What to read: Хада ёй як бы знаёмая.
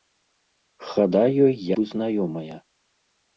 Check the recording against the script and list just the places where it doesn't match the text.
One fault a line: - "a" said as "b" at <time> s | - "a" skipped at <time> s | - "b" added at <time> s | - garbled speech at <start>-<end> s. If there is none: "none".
- "як" skipped at 1.5 s